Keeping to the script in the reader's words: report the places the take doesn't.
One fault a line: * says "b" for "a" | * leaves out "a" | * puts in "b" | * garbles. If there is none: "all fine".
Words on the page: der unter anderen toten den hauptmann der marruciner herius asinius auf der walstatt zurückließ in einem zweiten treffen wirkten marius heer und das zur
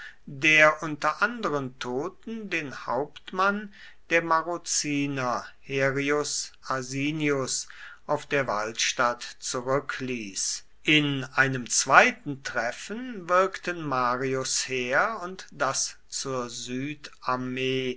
all fine